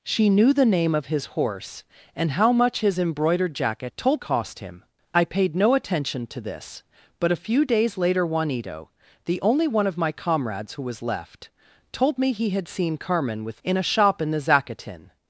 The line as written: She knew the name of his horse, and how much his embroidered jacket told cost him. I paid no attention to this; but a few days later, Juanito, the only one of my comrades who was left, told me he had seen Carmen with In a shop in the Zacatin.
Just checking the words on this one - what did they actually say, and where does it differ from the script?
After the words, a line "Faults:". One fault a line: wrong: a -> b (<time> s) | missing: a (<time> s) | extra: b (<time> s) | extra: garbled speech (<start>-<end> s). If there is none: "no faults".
She knew the name of his horse, and how much his embroidered jacket told cost him. I paid no attention to this; but a few days later, Juanito, the only one of my comrades who was left, told me he had seen Carmen with In a shop in the Zacatin.
Faults:
no faults